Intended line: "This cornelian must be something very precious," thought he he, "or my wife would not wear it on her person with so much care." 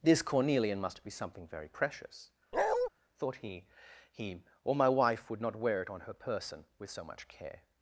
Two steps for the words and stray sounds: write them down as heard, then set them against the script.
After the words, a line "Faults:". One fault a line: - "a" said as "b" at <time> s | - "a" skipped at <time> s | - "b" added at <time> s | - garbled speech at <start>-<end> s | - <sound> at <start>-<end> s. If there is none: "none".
"This cornelian must be something very precious," thought he he, "or my wife would not wear it on her person with so much care."
Faults:
- bark at 2.5-2.9 s